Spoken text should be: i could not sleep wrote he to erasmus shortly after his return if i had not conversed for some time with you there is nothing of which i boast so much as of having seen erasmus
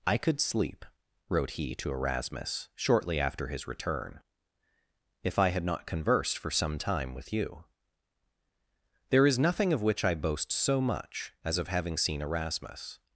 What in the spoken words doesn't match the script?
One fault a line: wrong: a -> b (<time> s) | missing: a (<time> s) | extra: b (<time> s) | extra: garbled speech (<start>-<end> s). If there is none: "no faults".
missing: not (0.4 s)